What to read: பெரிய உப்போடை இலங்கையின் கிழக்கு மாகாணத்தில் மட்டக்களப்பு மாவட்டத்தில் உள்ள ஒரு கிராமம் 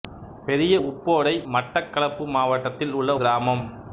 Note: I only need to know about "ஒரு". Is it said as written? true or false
false